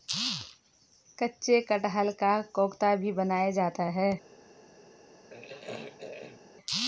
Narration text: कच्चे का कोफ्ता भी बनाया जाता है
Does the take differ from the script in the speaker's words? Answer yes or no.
yes